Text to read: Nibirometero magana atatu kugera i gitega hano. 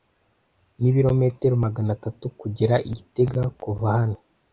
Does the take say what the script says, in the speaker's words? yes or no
no